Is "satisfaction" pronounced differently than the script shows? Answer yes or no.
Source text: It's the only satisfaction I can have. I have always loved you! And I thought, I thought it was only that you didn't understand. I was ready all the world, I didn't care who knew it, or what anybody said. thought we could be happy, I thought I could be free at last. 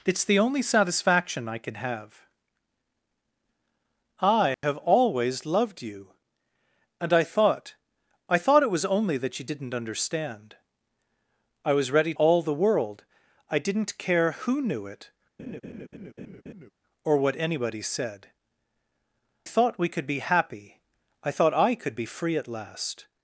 no